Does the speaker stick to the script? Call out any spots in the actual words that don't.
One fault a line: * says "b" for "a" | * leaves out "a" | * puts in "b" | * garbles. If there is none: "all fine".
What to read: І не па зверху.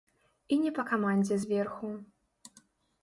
* puts in "камандзе"